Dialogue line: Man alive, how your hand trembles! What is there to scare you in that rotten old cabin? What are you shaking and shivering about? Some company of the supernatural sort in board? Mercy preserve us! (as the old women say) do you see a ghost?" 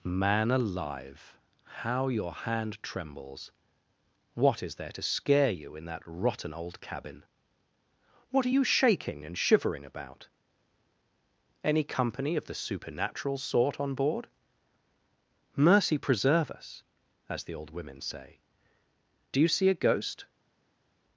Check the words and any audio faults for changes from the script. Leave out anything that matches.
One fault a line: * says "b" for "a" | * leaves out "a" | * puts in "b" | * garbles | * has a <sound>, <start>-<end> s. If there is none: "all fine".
* says "Any" for "Some"
* says "on" for "in"